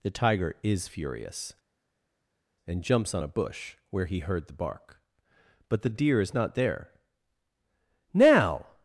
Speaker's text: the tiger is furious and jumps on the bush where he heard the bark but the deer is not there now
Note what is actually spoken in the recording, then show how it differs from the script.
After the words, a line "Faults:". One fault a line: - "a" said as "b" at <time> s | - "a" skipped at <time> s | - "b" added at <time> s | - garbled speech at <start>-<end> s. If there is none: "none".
the tiger is furious and jumps on a bush where he heard the bark but the deer is not there now
Faults:
- "the" said as "a" at 3.2 s